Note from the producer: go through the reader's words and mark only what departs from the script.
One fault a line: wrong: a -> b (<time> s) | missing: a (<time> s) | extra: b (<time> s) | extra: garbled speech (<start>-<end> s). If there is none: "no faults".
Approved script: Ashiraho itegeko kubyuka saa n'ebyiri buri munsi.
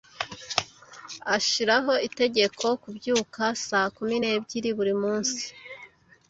extra: kumi (4.0 s)